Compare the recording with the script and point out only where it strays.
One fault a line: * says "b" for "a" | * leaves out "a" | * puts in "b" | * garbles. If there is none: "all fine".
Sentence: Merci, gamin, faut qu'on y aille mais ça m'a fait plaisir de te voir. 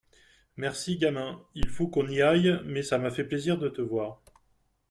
* puts in "il"